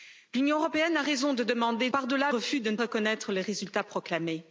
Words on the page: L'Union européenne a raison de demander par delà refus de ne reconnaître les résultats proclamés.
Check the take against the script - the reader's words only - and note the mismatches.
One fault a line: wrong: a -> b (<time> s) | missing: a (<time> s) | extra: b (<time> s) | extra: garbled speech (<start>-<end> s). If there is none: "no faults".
no faults